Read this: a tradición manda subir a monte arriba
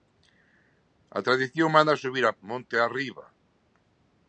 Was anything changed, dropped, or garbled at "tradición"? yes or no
no